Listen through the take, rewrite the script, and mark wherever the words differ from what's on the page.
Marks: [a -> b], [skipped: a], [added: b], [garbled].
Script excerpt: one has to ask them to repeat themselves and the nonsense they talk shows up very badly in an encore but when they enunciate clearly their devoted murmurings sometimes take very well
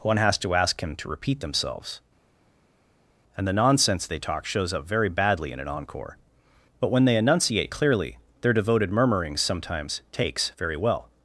one has to ask [them -> him] to repeat themselves and the nonsense they talk shows up very badly in an encore but when they enunciate clearly their devoted murmurings sometimes [take -> takes] very well